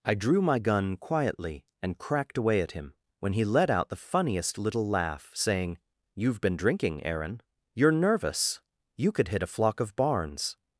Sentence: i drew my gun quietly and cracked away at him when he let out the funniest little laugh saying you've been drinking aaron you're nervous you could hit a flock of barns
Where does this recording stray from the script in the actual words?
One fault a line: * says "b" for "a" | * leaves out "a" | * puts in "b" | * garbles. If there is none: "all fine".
all fine